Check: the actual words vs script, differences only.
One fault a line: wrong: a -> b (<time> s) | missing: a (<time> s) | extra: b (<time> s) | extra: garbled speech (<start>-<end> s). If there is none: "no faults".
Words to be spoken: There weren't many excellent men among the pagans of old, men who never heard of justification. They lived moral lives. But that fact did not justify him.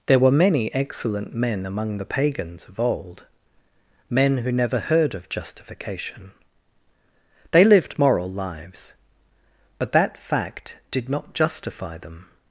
wrong: weren't -> were (0.2 s)
wrong: him -> them (12.0 s)